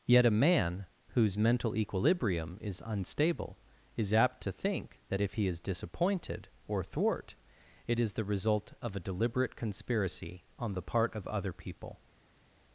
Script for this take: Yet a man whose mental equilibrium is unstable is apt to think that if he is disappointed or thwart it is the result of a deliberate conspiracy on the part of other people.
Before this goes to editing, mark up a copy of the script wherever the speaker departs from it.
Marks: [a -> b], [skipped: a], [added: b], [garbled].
Yet a man whose mental equilibrium is unstable is apt to think that if he is disappointed or thwart it is the result of a deliberate conspiracy on the part of other people.